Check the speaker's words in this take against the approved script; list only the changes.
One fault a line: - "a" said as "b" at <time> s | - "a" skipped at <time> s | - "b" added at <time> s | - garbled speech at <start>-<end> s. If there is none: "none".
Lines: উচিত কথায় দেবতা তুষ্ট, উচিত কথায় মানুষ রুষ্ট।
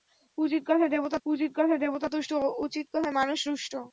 - "উচিত কথায় দেবতা" added at 1.3 s